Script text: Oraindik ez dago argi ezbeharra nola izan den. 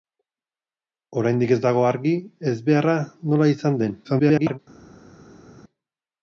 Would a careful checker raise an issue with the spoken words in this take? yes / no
yes